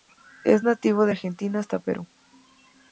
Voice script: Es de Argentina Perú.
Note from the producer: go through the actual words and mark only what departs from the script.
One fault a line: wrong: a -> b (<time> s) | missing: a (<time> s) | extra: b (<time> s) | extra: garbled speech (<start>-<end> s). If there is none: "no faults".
extra: nativo (0.6 s)
extra: hasta (1.6 s)